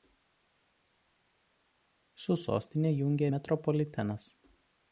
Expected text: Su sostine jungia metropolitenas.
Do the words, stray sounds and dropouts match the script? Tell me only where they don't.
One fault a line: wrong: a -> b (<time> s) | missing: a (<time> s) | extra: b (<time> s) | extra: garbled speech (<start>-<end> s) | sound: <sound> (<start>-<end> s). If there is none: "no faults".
no faults